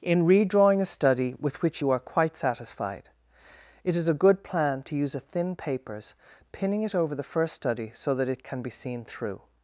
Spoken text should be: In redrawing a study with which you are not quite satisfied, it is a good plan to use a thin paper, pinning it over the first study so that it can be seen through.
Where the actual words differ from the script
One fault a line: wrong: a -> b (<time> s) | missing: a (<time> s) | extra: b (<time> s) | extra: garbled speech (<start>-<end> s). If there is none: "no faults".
missing: not (2.0 s)
wrong: paper -> papers (5.6 s)